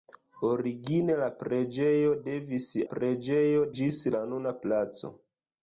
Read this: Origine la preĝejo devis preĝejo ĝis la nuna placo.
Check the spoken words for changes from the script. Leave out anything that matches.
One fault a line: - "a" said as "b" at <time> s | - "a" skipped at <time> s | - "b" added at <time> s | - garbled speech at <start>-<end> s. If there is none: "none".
none